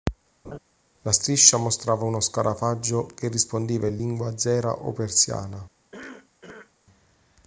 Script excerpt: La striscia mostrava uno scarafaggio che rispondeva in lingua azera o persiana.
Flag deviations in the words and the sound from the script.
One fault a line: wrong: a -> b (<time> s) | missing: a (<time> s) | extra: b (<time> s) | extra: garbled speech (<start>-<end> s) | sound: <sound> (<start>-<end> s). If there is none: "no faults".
sound: laugh (0.4-0.6 s)
sound: cough (5.9-6.7 s)